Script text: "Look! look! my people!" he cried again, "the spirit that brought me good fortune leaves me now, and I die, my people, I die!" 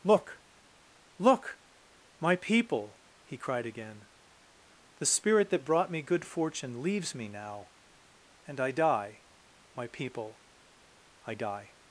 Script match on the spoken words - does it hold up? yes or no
yes